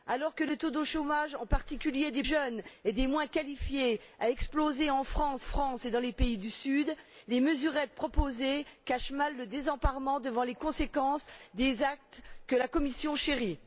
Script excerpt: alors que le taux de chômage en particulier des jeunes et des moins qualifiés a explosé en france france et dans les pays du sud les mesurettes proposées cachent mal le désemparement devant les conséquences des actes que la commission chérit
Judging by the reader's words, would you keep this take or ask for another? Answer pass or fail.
pass